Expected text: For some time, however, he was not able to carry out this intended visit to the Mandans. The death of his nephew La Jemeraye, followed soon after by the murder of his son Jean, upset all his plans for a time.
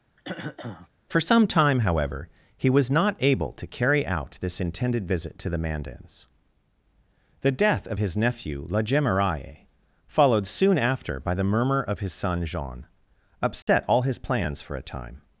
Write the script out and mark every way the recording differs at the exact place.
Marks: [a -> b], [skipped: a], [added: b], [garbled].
For some time, however, he was not able to carry out this intended visit to the Mandans. The death of his nephew La Jemeraye, followed soon after by the [murder -> murmur] of his son Jean, upset all his plans for a time.